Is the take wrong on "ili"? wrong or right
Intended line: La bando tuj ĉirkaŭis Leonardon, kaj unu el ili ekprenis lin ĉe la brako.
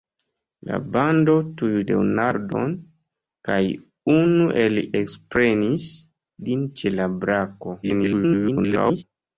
wrong